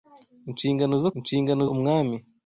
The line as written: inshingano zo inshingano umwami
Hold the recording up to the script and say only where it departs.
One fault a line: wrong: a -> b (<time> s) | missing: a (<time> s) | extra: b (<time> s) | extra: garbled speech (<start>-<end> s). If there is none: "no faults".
no faults